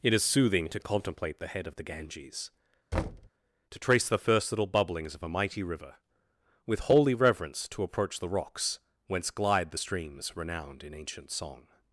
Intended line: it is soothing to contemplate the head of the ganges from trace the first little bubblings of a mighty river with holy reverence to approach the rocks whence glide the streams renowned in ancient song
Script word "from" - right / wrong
wrong